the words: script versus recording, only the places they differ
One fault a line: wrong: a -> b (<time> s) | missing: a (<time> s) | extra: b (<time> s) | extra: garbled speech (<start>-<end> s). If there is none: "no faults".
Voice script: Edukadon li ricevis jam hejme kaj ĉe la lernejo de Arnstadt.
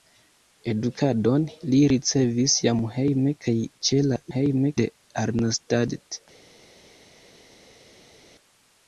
wrong: lernejo -> hejme (4.3 s)